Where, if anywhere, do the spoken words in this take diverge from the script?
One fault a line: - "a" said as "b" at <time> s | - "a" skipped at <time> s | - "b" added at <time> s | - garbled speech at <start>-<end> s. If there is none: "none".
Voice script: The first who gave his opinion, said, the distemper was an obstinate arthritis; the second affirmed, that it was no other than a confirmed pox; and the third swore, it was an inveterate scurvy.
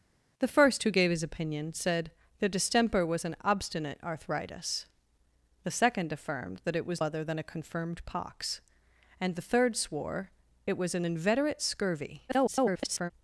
- "no" skipped at 7.0 s
- garbled speech at 12.3-13.1 s